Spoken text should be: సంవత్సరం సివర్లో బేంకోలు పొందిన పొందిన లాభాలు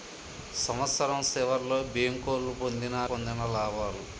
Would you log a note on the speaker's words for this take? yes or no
no